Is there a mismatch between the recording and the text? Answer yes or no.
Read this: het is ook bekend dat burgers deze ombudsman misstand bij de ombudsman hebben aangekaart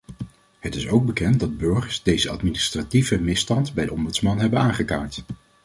yes